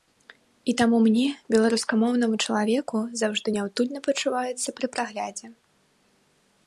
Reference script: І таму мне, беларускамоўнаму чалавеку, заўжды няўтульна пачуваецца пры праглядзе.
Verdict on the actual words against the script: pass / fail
pass